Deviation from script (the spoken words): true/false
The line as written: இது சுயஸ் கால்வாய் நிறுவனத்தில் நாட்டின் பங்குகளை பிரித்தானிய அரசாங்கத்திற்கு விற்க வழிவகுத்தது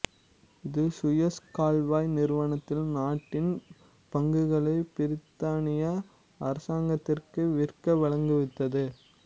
false